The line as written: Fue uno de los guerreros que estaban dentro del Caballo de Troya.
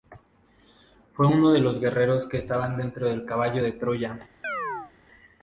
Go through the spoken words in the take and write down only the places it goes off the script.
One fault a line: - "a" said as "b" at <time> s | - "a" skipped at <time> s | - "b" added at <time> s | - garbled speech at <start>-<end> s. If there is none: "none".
none